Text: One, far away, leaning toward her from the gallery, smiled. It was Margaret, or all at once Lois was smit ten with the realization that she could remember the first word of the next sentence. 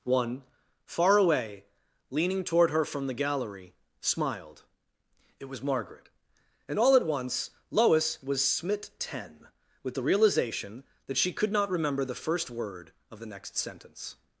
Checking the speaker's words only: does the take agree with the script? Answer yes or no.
no